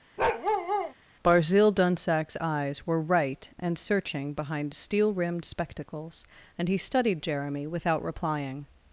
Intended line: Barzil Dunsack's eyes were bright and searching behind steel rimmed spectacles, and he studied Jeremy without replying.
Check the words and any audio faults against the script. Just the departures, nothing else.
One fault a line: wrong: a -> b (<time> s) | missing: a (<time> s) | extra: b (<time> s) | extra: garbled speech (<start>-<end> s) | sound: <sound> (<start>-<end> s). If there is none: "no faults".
sound: bark (0.2-0.9 s)
wrong: bright -> right (3.0 s)